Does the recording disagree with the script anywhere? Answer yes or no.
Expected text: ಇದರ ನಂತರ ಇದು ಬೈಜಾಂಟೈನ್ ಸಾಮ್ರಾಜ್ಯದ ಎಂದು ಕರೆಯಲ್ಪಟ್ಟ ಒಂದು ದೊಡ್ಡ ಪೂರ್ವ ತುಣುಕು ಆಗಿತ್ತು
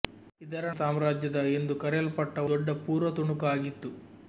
yes